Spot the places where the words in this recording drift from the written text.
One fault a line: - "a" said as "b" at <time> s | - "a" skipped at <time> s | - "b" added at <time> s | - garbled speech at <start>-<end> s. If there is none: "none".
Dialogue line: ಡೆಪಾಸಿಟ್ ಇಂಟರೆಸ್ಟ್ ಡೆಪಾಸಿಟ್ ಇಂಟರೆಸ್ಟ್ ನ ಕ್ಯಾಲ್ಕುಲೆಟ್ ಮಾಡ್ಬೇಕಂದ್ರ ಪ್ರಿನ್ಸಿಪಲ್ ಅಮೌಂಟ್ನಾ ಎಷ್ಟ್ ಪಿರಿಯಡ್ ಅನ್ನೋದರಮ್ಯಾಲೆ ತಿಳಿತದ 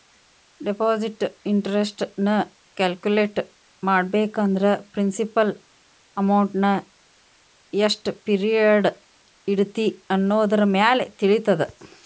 - "ಡೆಪಾಸಿಟ್ ಇಂಟರೆಸ್ಟ್" skipped at 2.0 s
- "ಇಡತಿ" added at 9.5 s